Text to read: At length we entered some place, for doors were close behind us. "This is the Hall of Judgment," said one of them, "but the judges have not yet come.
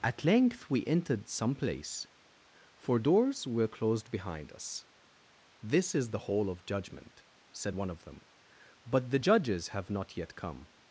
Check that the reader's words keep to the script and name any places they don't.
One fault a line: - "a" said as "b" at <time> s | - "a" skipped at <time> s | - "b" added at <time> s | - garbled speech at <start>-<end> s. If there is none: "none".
- "close" said as "closed" at 3.7 s